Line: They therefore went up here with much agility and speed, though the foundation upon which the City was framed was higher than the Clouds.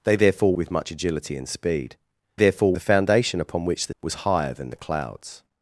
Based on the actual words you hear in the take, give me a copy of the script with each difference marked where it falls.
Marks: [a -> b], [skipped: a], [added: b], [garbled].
They therefore [skipped: went up here] with much agility and speed, [though -> therefore] the foundation upon which the [skipped: City was framed] was higher than the Clouds.